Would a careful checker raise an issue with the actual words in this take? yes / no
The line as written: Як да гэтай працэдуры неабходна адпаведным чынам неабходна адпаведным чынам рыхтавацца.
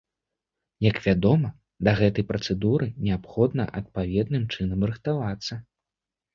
yes